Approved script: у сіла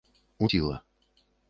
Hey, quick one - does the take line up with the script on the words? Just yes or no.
yes